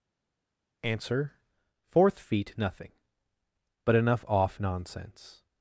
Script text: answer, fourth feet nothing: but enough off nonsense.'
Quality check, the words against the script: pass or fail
pass